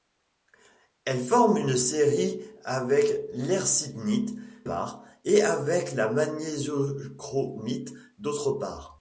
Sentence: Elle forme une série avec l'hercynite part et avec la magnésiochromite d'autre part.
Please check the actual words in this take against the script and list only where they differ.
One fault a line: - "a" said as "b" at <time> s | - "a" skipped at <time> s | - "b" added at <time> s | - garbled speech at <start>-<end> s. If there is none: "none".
none